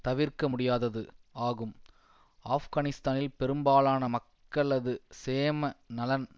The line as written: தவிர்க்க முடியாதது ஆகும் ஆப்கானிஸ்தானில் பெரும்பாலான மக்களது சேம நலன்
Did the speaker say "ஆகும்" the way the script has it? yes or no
yes